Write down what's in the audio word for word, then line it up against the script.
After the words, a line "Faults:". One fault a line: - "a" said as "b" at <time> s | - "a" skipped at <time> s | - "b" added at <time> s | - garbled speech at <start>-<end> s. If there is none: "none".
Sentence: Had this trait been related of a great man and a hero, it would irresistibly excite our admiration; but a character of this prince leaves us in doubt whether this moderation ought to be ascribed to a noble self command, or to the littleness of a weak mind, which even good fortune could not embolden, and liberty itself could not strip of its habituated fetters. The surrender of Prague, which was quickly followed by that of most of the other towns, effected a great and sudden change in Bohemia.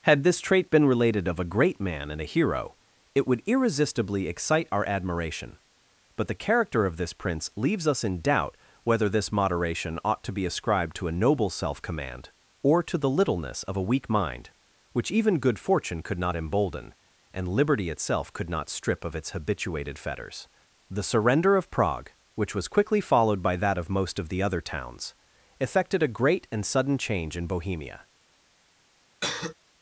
Had this trait been related of a great man and a hero, it would irresistibly excite our admiration; but the character of this prince leaves us in doubt whether this moderation ought to be ascribed to a noble self command, or to the littleness of a weak mind, which even good fortune could not embolden, and liberty itself could not strip of its habituated fetters. The surrender of Prague, which was quickly followed by that of most of the other towns, effected a great and sudden change in Bohemia.
Faults:
- "a" said as "the" at 6.3 s